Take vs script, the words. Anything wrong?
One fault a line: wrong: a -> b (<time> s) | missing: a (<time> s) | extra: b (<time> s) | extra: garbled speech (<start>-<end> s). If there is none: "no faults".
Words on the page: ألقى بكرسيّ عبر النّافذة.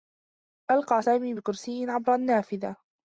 extra: سامي (1.0 s)